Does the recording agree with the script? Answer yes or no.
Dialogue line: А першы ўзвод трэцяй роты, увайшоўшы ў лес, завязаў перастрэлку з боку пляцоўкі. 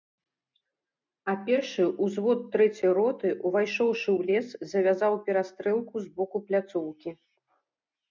yes